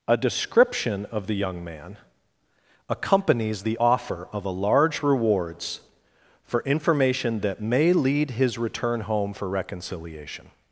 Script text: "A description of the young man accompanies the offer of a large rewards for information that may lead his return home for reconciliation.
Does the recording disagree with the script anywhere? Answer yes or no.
no